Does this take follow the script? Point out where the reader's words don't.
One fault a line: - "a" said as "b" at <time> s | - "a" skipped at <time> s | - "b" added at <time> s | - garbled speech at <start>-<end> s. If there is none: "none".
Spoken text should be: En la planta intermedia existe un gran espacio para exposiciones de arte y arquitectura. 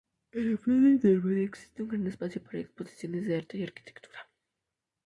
none